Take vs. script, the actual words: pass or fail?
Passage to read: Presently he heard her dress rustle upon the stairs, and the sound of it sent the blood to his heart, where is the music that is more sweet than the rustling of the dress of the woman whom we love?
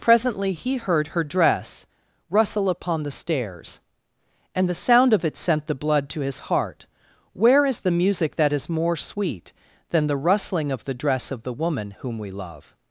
pass